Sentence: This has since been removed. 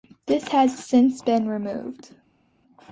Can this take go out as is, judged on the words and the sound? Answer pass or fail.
pass